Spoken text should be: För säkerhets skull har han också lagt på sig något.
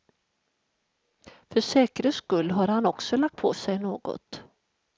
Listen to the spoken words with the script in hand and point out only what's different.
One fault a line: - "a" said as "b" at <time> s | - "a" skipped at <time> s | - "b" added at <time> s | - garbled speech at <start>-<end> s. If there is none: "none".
none